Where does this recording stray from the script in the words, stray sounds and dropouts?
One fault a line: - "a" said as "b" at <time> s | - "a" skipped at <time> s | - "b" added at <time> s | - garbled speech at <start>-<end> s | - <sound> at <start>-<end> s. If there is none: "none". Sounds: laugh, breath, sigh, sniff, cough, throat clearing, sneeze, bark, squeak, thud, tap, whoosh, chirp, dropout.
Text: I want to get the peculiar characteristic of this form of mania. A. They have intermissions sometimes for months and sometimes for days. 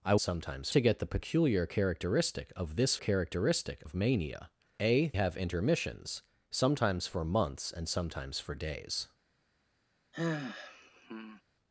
- "want" said as "sometimes" at 0.2 s
- "form" said as "characteristic" at 2.9 s
- "They" skipped at 5.1 s
- sigh at 10.1-11.4 s